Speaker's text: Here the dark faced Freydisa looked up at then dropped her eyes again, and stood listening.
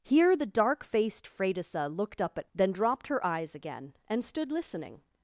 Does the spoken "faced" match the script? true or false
true